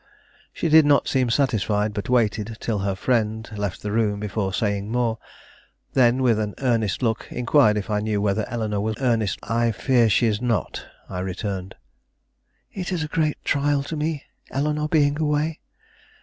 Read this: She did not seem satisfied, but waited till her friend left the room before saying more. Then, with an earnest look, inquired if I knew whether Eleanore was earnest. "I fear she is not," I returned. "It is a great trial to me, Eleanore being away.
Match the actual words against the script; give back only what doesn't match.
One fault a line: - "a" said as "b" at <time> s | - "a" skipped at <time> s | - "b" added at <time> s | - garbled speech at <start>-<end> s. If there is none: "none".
none